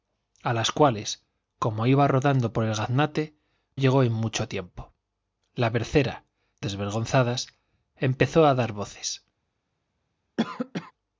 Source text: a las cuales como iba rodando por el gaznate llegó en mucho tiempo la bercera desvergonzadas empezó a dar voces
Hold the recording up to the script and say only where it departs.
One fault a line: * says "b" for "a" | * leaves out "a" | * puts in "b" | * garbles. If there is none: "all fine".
all fine